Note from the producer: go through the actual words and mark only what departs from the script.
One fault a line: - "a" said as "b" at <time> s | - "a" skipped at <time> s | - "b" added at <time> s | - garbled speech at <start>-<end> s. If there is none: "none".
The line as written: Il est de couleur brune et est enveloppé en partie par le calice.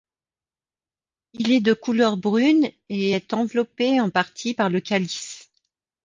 none